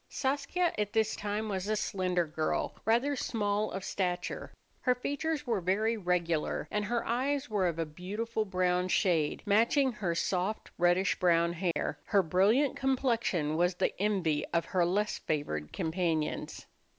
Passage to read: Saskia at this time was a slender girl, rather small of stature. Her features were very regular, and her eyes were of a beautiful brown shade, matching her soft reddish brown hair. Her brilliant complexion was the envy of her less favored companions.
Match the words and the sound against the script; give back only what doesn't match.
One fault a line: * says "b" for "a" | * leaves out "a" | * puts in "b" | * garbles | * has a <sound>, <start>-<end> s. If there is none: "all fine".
* has a dropout, 11.7-11.8 s